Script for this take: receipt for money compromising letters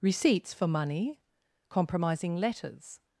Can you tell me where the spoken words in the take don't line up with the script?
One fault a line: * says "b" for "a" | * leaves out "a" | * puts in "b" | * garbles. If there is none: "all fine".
* says "receipts" for "receipt"